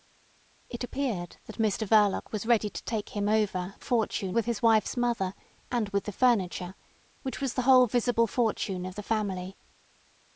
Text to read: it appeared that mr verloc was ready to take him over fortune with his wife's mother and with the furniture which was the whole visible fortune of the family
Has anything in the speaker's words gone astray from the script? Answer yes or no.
no